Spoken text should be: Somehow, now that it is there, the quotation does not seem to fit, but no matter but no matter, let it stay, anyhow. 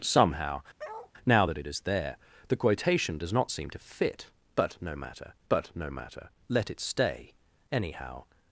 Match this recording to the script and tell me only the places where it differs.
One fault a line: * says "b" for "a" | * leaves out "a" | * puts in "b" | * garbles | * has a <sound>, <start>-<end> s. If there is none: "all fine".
* has a bark, 0.8-1.1 s